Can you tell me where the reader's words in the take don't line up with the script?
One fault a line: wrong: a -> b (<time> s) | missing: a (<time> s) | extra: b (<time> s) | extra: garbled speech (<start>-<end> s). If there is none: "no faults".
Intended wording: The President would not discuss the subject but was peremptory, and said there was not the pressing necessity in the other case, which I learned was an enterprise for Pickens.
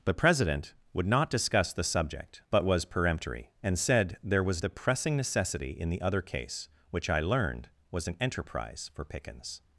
missing: not (4.6 s)